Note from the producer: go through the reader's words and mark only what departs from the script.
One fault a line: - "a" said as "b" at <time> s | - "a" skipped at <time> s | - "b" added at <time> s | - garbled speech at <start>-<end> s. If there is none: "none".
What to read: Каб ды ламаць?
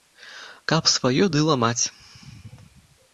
- "сваё" added at 0.9 s